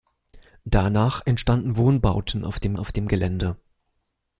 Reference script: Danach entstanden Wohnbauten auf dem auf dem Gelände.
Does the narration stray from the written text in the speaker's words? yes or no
no